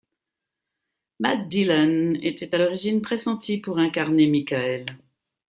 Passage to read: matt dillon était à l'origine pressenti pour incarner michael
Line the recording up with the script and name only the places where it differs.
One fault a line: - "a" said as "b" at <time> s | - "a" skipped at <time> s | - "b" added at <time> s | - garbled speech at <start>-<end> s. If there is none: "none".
none